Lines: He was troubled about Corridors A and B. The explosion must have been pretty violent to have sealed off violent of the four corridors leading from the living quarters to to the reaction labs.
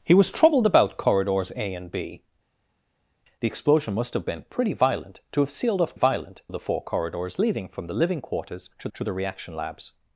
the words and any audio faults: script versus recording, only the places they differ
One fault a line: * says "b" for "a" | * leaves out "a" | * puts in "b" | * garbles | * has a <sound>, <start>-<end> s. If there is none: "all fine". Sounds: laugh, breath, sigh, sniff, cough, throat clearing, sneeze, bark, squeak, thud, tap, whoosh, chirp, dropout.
all fine